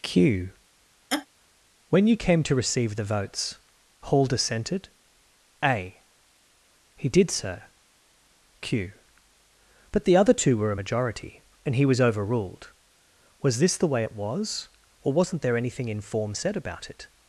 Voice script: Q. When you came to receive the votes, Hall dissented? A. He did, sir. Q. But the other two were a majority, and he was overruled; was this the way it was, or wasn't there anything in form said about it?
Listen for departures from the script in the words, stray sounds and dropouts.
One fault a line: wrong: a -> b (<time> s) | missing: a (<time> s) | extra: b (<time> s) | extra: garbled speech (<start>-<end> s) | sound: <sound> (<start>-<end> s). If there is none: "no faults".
sound: laugh (1.1-1.3 s)